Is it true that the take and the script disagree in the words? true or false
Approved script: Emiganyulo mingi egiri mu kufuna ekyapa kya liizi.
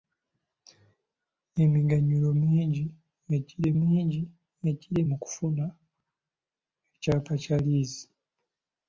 true